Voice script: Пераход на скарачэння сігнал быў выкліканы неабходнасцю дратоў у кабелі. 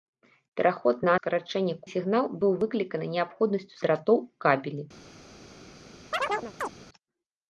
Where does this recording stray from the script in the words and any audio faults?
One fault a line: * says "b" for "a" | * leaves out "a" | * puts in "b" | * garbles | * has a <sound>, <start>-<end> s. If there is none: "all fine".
* has a chirp, 6.1-6.7 s